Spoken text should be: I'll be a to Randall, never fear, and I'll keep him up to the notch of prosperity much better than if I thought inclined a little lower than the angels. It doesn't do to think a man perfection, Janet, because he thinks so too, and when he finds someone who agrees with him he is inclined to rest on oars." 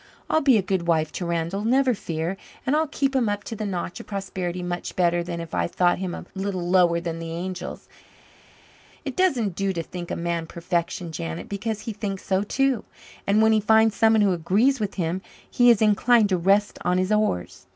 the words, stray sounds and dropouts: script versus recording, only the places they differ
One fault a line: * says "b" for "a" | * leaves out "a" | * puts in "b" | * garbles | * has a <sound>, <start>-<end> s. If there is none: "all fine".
* puts in "good wife"
* says "him" for "inclined"
* puts in "his"